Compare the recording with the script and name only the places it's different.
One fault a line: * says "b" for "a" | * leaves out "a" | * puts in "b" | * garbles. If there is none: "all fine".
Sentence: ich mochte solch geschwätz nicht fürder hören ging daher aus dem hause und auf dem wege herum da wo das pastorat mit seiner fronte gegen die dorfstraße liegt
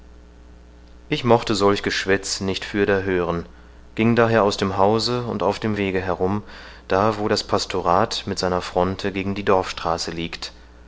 all fine